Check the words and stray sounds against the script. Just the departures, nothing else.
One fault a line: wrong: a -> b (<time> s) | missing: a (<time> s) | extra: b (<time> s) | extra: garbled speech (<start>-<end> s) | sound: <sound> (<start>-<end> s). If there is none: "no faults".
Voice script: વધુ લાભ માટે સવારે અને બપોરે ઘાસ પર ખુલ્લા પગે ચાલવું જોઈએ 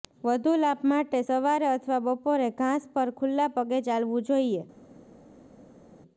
wrong: અને -> અથવા (1.7 s)